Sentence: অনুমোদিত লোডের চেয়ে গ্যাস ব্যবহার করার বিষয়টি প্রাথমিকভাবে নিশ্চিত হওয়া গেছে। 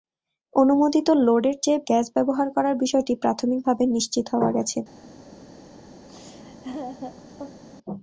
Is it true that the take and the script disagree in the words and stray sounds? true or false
true